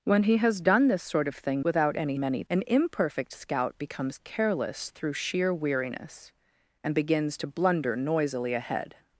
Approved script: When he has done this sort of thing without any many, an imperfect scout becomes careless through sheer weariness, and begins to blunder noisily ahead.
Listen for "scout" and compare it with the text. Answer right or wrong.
right